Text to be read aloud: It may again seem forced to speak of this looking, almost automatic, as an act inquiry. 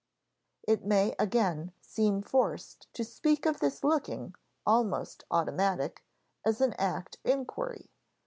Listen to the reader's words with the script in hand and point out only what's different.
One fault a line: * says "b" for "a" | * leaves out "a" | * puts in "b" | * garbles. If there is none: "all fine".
all fine